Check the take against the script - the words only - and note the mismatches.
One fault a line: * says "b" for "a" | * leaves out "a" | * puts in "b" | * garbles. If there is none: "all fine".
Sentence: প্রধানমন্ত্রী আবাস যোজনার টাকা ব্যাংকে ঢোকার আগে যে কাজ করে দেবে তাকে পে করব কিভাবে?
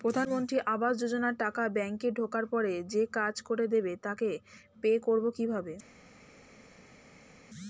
* says "পরে" for "আগে"